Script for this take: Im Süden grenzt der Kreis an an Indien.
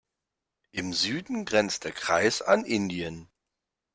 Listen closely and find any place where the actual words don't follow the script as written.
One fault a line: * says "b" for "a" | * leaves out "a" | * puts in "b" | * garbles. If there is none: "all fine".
* leaves out "an"